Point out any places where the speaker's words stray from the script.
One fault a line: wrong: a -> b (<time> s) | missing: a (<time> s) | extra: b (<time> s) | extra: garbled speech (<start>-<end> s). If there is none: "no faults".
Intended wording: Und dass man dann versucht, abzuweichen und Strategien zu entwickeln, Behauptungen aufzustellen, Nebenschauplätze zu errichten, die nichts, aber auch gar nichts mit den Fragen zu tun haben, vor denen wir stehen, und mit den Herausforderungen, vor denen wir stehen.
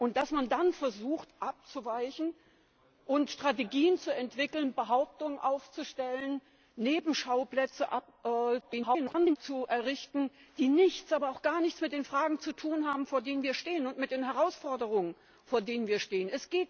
extra: garbled speech (8.6-9.4 s)